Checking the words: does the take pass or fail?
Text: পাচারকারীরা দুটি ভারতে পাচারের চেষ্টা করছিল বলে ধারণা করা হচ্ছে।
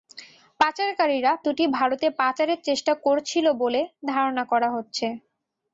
pass